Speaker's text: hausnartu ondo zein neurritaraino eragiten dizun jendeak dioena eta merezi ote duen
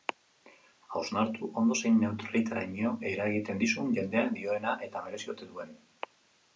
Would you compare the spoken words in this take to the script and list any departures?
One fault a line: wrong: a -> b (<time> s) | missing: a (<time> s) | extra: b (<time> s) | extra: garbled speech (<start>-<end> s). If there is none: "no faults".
no faults